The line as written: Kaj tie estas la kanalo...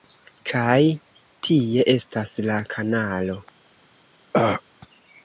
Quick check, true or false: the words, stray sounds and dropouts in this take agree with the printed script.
false